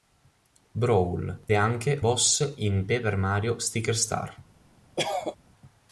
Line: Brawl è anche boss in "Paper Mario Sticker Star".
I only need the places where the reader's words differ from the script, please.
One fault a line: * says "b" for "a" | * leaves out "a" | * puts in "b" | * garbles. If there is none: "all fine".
all fine